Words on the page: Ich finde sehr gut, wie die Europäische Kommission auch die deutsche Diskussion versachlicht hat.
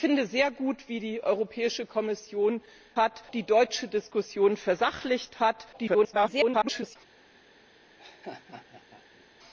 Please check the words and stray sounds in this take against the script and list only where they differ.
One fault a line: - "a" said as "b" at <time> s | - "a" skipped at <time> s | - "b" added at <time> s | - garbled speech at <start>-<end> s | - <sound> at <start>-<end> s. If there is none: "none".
- "auch" said as "hat" at 3.0 s
- garbled speech at 5.7-7.0 s
- laugh at 8.0-9.2 s